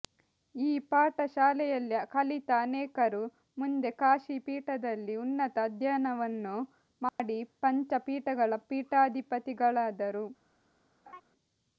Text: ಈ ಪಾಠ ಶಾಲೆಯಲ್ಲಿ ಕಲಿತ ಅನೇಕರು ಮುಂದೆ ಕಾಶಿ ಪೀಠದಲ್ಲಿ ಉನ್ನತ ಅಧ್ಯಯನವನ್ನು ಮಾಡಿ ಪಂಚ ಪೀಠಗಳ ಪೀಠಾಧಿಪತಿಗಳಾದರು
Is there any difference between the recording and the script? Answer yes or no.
no